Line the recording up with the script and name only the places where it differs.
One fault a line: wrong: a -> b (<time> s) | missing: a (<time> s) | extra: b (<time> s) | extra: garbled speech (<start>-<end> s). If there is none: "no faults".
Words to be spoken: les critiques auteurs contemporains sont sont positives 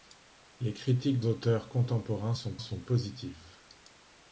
no faults